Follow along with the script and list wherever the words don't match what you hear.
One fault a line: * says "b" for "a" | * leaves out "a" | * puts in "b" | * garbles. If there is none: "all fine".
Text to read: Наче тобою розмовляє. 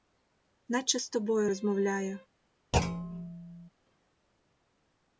* puts in "з"